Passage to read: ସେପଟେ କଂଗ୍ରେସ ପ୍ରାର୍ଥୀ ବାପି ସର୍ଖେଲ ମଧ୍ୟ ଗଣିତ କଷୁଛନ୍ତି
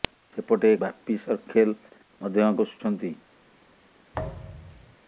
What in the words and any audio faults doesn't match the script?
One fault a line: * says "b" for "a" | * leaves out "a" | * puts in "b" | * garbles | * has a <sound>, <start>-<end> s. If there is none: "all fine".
* leaves out "କଂଗ୍ରେସ ପ୍ରାର୍ଥୀ"
* leaves out "ଗଣିତ"
* has a thud, 4.1-5.0 s